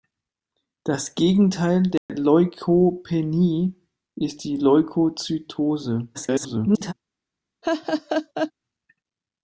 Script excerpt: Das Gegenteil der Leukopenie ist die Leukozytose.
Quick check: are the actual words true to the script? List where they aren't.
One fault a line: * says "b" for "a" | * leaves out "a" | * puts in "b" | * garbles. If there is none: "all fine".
* garbles